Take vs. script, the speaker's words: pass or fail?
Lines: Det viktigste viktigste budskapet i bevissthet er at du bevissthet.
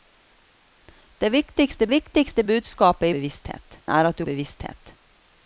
pass